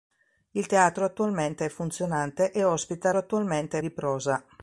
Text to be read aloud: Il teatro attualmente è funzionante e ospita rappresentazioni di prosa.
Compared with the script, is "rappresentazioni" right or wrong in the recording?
wrong